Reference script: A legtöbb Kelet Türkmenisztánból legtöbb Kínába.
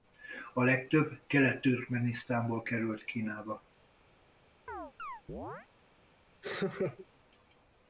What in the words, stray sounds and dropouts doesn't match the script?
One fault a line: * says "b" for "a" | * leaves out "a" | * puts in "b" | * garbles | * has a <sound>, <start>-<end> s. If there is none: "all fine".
* says "került" for "legtöbb"
* has a chirp, 4.7-5.7 s
* has a laugh, 6.4-7.1 s